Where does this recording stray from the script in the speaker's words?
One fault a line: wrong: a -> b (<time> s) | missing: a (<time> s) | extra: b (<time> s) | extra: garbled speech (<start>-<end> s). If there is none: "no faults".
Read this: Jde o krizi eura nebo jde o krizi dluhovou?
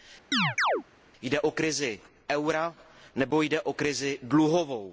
no faults